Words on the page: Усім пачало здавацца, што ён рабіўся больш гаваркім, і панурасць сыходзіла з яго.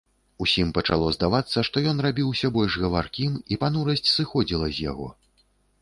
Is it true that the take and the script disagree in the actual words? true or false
false